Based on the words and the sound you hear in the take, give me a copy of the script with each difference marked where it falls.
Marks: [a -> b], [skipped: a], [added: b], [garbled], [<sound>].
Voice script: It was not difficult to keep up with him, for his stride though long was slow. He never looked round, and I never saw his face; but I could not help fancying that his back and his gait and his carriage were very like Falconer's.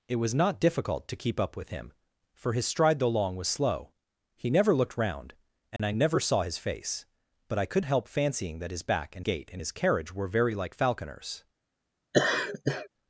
It was not difficult to keep up with him, for his stride though long was slow. He never looked round, and [dropout] I never saw his face; but I could [skipped: not] help fancying that his back and [skipped: his] gait and his carriage were very like Falconer's. [laugh]